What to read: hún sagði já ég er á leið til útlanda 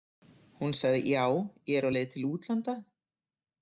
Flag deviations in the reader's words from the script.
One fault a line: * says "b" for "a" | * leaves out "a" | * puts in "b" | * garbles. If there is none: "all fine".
all fine